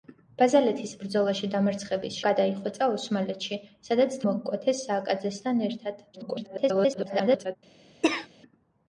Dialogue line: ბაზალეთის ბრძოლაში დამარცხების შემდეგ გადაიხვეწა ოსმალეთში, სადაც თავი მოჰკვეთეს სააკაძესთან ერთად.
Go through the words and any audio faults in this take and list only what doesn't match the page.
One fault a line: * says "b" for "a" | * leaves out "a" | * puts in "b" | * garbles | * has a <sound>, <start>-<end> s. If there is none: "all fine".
* leaves out "შემდეგ"
* leaves out "თავი"
* garbles
* has a cough, 8.0-8.3 s